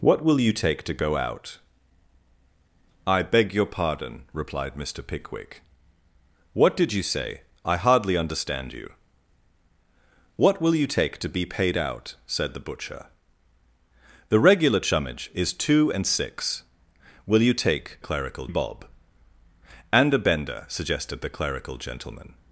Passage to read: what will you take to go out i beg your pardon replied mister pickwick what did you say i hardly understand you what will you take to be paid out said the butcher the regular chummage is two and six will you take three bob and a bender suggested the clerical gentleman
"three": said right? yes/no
no